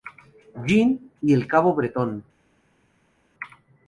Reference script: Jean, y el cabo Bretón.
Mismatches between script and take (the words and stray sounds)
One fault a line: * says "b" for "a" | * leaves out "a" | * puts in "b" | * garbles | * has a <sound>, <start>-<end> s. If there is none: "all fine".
all fine